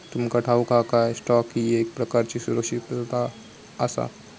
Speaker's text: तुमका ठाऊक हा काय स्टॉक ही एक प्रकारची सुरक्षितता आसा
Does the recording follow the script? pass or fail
pass